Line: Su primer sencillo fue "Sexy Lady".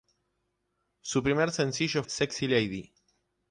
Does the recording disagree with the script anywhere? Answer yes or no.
yes